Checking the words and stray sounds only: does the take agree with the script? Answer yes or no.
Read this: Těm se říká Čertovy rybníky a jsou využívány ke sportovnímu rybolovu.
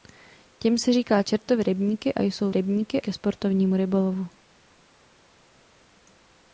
no